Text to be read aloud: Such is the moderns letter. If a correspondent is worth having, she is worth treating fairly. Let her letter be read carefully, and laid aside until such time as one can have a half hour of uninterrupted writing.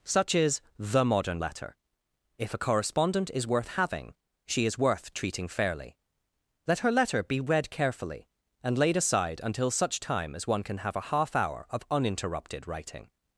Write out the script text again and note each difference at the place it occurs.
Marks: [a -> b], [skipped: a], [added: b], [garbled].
Such is the [moderns -> modern] letter. If a correspondent is worth having, she is worth treating fairly. Let her letter be read carefully, and laid aside until such time as one can have a half hour of uninterrupted writing.